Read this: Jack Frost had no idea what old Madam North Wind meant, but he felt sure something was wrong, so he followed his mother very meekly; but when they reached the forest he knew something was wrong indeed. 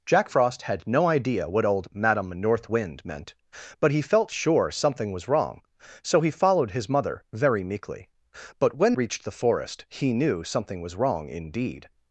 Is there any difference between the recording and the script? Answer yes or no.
yes